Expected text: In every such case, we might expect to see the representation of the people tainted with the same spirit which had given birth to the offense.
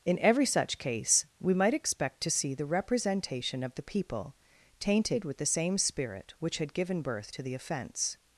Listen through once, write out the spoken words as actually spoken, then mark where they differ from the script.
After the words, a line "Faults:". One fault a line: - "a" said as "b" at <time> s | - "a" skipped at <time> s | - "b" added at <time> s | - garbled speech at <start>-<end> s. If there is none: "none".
In every such case, we might expect to see the representation of the people tainted with the same spirit which had given birth to the offense.
Faults:
none